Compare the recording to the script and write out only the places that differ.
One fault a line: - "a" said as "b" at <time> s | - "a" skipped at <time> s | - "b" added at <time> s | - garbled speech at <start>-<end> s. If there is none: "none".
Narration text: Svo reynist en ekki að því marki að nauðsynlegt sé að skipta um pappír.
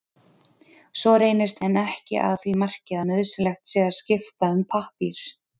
none